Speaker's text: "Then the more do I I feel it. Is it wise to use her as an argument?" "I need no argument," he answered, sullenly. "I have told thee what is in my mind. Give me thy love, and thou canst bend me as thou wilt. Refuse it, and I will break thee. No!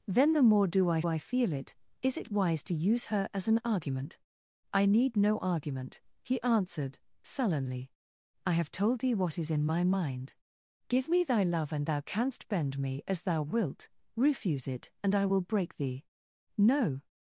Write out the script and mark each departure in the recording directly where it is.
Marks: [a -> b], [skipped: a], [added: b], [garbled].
"Then the more do I I feel it. Is it wise to use her as an argument?" "I need no argument," he answered, sullenly. "I have told thee what is in my mind. Give me thy love, and thou canst bend me as thou wilt. Refuse it, and I will break thee. No!